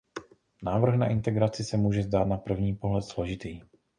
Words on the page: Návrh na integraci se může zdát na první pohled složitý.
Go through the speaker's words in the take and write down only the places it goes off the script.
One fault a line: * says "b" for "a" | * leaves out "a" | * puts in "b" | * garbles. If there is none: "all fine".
all fine